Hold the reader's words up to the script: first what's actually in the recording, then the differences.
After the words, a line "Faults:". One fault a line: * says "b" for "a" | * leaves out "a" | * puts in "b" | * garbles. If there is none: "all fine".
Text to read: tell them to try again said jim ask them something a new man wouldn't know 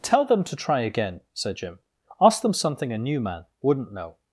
tell them to try again said jim ask them something a new man wouldn't know
Faults:
all fine